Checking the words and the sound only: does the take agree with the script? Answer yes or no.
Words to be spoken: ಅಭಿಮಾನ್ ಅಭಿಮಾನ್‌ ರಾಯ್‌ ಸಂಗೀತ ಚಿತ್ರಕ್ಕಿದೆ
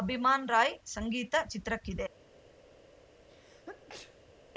no